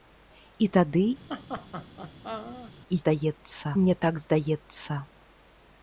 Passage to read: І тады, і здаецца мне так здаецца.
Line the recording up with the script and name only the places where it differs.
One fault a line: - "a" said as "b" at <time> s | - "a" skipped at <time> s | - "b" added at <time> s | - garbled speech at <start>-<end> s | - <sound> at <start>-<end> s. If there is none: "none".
- laugh at 1.3-2.7 s